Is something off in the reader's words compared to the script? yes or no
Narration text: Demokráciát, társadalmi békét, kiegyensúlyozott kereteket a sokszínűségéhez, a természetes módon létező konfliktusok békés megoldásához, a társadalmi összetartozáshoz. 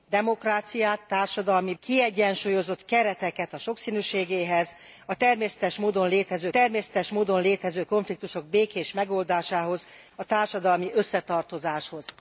yes